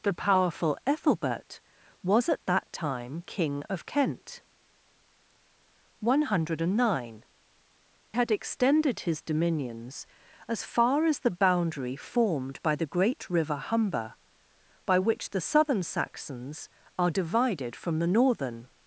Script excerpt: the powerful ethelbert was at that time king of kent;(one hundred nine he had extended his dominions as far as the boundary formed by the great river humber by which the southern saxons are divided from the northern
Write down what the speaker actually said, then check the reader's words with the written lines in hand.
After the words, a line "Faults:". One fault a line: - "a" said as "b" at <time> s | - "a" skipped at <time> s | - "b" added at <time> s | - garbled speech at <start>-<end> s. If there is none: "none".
the powerful ethelbert was at that time king of kent;(one hundred nine had extended his dominions as far as the boundary formed by the great river humber by which the southern saxons are divided from the northern
Faults:
- "he" skipped at 7.2 s